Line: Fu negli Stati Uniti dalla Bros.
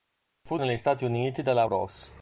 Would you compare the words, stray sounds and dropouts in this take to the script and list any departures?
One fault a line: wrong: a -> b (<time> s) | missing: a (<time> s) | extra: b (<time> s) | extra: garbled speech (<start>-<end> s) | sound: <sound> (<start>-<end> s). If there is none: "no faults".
no faults